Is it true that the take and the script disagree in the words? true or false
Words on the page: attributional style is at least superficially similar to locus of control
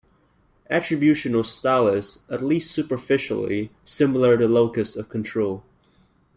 false